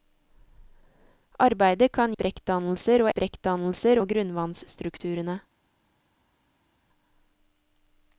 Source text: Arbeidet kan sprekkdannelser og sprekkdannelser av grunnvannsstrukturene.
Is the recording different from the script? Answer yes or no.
no